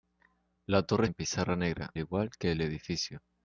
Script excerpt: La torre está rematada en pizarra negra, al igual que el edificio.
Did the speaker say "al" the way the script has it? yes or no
no